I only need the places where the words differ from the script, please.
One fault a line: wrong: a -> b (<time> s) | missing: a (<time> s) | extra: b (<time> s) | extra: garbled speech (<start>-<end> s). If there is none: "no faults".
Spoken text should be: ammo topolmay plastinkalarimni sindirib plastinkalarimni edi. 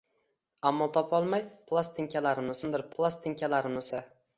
no faults